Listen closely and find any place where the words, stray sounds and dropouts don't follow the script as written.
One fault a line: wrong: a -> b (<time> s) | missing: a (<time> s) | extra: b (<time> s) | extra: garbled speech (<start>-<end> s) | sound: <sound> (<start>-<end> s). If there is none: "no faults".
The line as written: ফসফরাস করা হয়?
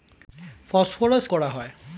no faults